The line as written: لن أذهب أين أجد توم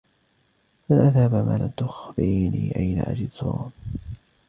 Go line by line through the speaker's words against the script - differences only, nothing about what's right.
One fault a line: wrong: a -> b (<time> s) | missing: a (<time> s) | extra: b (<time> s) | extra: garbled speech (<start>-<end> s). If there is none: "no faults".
extra: ما لم تخبريني (1.3 s)